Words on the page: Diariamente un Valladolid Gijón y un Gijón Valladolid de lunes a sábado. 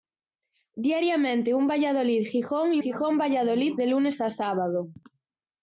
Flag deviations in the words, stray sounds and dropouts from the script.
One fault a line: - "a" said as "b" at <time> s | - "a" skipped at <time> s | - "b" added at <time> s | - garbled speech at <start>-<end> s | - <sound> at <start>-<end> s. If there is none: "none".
- "un" skipped at 2.8 s